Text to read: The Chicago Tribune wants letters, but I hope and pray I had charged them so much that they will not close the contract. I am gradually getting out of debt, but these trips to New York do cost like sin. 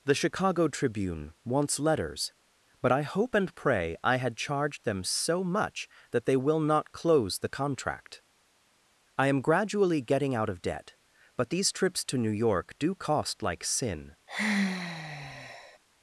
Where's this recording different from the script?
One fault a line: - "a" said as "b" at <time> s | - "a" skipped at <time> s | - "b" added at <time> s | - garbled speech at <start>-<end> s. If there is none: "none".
none